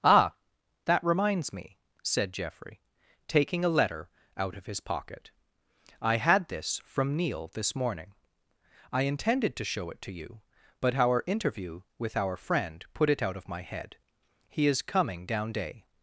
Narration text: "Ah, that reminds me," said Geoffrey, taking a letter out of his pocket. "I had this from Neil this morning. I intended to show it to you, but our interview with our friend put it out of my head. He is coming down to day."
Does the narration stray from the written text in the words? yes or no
yes